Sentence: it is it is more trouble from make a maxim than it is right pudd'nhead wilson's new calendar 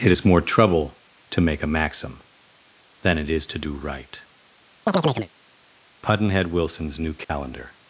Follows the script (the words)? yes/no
no